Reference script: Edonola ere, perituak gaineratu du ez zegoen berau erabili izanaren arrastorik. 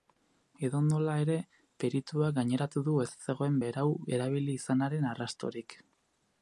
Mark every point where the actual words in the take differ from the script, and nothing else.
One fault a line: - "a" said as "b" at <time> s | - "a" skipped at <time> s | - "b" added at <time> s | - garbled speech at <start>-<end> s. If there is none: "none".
none